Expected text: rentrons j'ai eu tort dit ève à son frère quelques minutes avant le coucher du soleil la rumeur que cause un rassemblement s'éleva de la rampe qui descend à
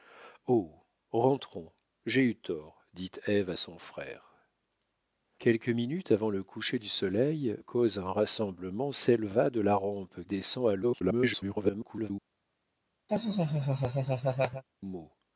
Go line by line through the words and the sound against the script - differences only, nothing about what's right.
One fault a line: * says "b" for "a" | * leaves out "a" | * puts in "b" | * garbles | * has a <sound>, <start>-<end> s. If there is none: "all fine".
* leaves out "la rumeur que"
* leaves out "qui"
* garbles
* has a laugh, 13.1-14.6 s